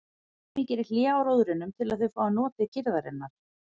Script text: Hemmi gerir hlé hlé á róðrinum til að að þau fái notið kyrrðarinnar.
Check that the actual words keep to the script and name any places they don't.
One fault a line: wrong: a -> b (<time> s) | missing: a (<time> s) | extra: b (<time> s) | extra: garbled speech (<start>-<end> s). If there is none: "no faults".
missing: hlé (1.0 s)
missing: að (2.1 s)